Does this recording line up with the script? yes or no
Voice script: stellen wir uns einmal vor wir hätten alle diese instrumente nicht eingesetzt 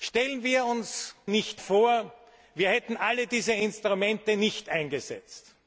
no